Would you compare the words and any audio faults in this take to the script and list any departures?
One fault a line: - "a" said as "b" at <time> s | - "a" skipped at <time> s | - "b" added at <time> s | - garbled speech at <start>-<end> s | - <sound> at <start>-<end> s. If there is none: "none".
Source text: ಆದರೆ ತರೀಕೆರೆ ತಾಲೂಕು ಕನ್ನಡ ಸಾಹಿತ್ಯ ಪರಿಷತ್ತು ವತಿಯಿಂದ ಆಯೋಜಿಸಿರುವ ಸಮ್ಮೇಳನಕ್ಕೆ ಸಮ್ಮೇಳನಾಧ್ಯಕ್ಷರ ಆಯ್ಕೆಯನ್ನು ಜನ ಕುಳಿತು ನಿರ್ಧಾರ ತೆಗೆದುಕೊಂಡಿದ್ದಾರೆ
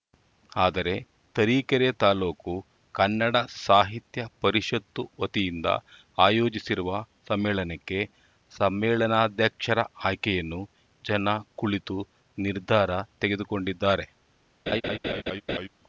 - laugh at 14.7-15.7 s